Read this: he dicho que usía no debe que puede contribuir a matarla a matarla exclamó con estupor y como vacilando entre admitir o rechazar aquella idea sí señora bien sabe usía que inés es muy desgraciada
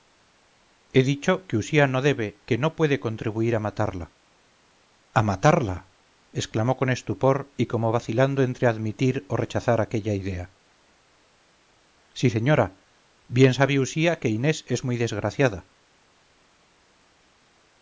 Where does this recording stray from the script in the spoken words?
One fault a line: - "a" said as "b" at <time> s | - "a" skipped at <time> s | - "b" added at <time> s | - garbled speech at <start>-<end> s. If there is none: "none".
- "no" added at 2.6 s